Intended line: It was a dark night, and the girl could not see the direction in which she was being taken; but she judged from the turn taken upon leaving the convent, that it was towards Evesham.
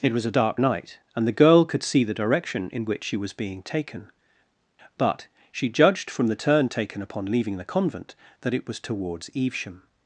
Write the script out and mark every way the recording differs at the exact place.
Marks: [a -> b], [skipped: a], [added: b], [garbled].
It was a dark night, and the girl could [skipped: not] see the direction in which she was being taken; but she judged from the turn taken upon leaving the convent, that it was towards Evesham.